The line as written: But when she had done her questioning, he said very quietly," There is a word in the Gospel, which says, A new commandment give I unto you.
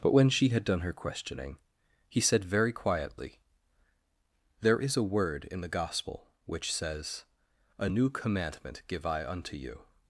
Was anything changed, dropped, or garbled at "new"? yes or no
no